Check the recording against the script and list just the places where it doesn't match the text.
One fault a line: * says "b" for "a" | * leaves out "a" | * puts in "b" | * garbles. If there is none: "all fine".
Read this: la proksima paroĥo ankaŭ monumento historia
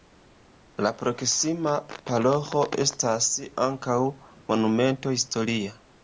* puts in "estas"